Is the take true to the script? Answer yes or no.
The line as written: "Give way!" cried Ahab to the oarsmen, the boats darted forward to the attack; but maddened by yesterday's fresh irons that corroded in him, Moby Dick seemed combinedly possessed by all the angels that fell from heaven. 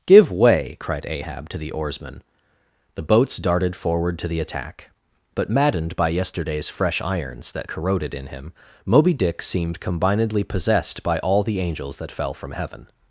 yes